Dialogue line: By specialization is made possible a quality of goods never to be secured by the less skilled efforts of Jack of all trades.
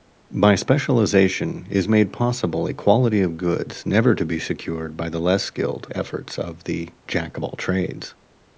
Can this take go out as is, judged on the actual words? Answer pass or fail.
fail